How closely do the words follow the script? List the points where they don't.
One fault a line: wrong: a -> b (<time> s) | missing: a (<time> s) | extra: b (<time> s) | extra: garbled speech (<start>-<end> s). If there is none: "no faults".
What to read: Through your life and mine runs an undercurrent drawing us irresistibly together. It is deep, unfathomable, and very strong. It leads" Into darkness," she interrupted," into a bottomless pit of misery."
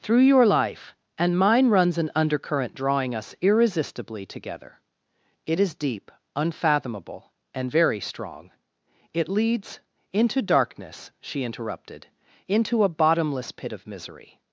no faults